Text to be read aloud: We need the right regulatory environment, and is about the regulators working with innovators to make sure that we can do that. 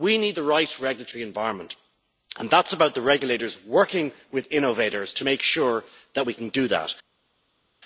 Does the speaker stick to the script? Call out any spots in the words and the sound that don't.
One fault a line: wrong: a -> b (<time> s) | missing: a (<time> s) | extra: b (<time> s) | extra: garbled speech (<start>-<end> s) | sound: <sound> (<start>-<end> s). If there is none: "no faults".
extra: that (2.5 s)